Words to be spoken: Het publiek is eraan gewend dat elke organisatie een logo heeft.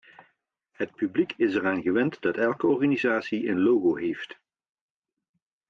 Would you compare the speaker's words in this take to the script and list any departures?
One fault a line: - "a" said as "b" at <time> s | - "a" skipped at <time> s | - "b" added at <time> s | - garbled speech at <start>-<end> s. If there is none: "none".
none